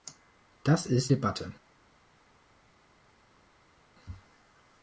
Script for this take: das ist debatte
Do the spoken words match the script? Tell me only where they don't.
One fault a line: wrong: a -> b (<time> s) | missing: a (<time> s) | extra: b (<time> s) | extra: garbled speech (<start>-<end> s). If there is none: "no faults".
no faults